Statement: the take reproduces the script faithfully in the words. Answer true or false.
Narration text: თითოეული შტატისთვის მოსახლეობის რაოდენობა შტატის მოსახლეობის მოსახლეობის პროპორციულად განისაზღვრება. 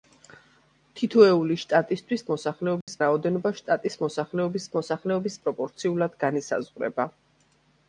true